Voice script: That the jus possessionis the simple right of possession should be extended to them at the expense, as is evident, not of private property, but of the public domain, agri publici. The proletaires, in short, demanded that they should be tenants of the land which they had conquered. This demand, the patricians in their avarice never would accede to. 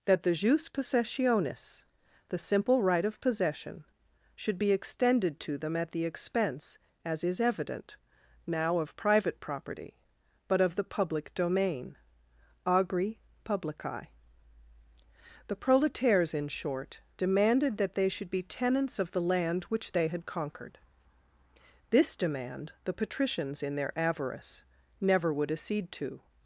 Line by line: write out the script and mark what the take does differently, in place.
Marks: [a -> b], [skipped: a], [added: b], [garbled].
That the jus possessionis the simple right of possession should be extended to them at the expense, as is evident, [not -> now] of private property, but of the public domain, agri publici. The proletaires, in short, demanded that they should be tenants of the land which they had conquered. This demand, the patricians in their avarice never would accede to.